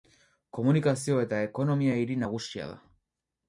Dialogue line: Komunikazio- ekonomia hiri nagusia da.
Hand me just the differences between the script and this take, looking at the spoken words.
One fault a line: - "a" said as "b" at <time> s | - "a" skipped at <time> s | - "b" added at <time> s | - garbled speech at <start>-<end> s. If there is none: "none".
- "eta" added at 1.2 s